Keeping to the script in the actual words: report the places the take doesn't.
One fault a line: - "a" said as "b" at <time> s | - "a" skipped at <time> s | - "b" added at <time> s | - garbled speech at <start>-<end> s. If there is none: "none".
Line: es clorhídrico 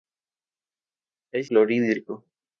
none